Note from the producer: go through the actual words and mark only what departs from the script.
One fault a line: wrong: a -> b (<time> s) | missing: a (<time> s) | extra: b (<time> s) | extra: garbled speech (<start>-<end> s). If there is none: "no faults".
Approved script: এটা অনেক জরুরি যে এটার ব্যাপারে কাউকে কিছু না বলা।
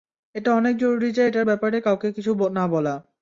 no faults